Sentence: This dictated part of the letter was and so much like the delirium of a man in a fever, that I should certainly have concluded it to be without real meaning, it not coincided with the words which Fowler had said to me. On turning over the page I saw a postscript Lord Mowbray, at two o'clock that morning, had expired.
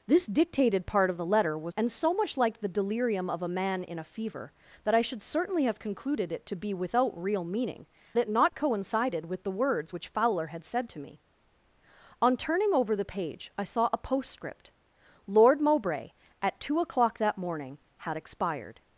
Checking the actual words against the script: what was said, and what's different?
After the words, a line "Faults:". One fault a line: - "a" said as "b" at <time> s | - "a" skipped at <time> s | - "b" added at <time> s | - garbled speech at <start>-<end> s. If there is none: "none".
This dictated part of the letter was and so much like the delirium of a man in a fever, that I should certainly have concluded it to be without real meaning, it not coincided with the words which Fowler had said to me. On turning over the page I saw a postscript Lord Mowbray, at two o'clock that morning, had expired.
Faults:
none